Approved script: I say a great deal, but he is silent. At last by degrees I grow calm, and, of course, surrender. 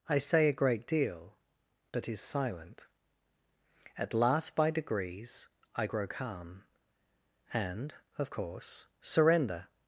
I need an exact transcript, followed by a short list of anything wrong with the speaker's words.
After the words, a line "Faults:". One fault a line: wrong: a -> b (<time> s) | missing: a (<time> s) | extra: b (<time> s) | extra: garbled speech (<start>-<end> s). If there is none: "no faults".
I say a great deal, but is silent. At last by degrees I grow calm, and, of course, surrender.
Faults:
missing: he (2.1 s)